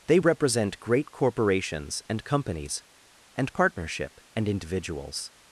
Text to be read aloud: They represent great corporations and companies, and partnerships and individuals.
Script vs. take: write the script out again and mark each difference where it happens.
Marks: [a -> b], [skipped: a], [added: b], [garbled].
They represent great corporations and companies, and [partnerships -> partnership] and individuals.